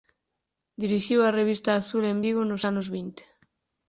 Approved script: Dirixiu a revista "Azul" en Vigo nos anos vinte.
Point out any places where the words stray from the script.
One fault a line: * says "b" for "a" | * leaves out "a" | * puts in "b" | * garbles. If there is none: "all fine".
all fine